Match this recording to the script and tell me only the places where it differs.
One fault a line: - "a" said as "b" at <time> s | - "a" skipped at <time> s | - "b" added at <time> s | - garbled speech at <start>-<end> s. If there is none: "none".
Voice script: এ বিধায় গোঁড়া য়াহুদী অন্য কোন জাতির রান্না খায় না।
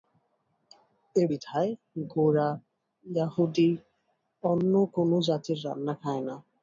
none